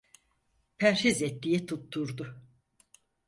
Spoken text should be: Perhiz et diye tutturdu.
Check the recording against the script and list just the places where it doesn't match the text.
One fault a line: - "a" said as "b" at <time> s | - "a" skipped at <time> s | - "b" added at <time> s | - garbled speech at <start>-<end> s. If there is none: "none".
none